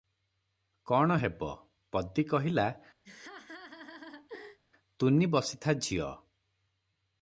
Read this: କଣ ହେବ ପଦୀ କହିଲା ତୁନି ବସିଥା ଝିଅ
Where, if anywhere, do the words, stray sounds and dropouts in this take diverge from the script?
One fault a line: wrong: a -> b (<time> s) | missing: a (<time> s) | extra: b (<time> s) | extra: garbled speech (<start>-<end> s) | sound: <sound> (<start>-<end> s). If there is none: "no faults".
sound: laugh (3.0-4.6 s)